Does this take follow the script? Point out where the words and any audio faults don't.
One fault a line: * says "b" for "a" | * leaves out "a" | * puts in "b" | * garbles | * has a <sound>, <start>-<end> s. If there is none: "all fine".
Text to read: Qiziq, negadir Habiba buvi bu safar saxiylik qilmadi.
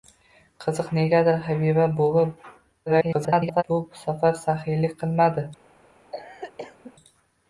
* garbles
* has a cough, 6.1-6.9 s